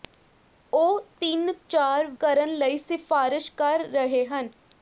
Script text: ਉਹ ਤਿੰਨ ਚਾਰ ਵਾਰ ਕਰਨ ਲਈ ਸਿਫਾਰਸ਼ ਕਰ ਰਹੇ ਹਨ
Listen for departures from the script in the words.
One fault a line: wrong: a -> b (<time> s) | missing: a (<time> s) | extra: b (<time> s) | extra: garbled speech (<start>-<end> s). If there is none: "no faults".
missing: ਵਾਰ (2.1 s)